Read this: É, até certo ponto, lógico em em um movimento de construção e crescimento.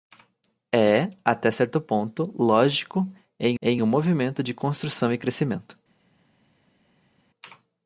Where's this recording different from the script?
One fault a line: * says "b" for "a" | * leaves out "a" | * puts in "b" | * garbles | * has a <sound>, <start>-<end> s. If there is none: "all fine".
all fine